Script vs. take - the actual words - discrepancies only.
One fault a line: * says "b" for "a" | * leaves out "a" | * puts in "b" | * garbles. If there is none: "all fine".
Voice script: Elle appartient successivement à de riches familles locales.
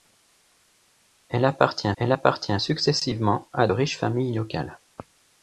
* puts in "elle appartient"
* leaves out "de"